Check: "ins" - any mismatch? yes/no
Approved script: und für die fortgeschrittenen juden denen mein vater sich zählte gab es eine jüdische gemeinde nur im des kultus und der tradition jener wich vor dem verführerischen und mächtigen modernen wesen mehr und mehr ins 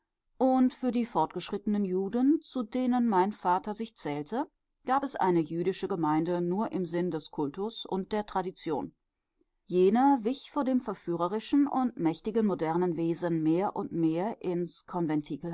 no